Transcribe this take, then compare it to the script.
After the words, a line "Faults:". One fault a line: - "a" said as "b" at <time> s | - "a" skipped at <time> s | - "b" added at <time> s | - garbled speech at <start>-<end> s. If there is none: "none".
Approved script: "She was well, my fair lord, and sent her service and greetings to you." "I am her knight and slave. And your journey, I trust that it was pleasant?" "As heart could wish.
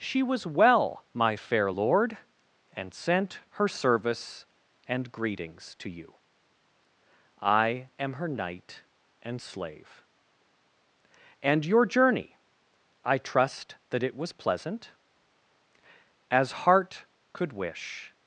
"She was well, my fair lord, and sent her service and greetings to you." "I am her knight and slave. And your journey, I trust that it was pleasant?" "As heart could wish.
Faults:
none